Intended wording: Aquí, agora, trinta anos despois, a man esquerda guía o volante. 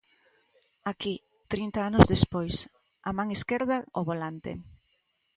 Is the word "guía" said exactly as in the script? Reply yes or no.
no